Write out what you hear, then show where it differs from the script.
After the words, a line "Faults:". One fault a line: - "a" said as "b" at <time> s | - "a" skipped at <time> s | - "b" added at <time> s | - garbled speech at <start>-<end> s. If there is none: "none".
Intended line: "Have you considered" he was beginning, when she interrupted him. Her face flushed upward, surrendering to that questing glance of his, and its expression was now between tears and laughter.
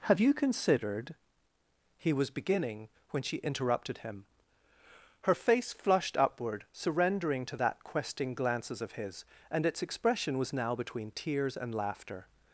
"Have you considered" he was beginning, when she interrupted him. Her face flushed upward, surrendering to that questing glances of his, and its expression was now between tears and laughter.
Faults:
- "glance" said as "glances" at 8.3 s